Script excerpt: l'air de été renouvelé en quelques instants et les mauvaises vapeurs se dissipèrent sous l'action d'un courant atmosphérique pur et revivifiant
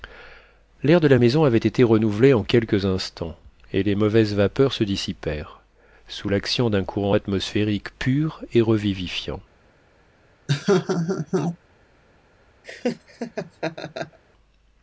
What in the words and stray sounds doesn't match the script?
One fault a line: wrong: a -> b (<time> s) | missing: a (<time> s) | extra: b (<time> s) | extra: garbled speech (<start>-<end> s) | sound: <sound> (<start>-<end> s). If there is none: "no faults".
extra: la maison avait (1.1 s)
sound: laugh (10.5-11.6 s)
sound: laugh (12.6-14.2 s)